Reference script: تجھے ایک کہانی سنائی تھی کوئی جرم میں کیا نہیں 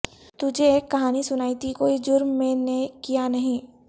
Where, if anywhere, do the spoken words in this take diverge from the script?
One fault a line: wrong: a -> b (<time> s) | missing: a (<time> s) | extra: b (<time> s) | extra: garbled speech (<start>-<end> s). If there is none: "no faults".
extra: نے (2.6 s)